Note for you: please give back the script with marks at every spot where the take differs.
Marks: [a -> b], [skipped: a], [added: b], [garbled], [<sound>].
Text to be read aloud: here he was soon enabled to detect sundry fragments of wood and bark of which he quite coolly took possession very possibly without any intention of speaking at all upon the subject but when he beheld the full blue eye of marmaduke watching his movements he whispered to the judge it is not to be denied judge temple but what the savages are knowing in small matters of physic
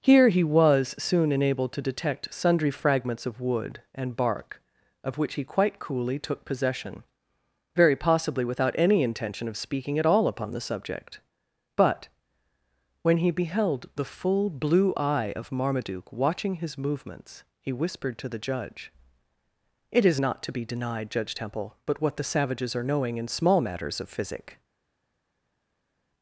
here he was soon enabled to detect sundry fragments of wood and bark of which he quite coolly took possession very possibly without any intention of speaking at all upon the subject but when he beheld the full blue eye of marmaduke watching his movements he whispered to the judge it is not to be denied judge temple but what the savages are knowing in small matters of physic